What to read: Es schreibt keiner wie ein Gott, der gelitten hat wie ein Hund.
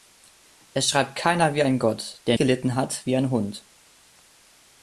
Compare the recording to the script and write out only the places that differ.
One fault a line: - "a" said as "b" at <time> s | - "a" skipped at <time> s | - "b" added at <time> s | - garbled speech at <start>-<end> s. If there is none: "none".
none